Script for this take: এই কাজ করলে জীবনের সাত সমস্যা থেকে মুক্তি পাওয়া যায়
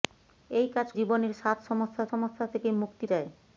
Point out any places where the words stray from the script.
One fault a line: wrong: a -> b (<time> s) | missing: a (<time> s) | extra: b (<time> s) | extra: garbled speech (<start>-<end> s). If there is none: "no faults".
missing: করলে (0.9 s)
extra: সমস্যা (2.1 s)
missing: পাওয়া (3.1 s)